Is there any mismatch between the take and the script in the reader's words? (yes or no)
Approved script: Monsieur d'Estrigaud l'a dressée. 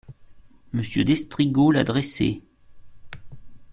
no